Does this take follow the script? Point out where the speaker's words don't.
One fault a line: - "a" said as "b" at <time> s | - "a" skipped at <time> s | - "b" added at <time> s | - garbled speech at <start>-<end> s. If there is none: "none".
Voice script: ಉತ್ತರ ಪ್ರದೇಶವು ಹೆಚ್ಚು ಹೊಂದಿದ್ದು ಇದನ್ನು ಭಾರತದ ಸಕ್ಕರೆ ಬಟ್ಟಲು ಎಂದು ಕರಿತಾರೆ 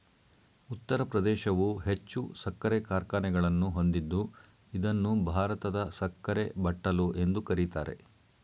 - "ಸಕ್ಕರೆ ಕಾರ್ಖಾನೆಗಳನ್ನು" added at 2.4 s